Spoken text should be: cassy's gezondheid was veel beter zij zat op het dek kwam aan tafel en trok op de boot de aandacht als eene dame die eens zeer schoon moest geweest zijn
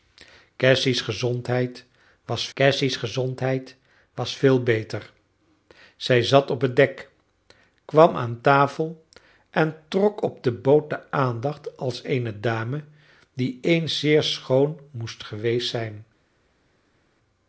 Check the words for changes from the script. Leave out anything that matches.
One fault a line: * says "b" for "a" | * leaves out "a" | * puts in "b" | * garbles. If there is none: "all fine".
* puts in "cassy's gezondheid was"